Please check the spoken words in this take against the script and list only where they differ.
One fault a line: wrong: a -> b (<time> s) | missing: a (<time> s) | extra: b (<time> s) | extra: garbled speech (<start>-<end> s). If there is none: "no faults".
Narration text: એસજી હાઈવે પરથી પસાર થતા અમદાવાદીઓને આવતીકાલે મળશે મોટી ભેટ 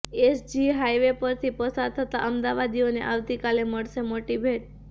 no faults